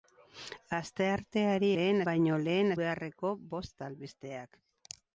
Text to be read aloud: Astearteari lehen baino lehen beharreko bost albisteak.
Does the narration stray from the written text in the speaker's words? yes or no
no